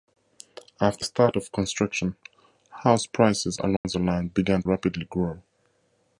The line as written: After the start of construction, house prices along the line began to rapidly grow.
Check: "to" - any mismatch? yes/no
yes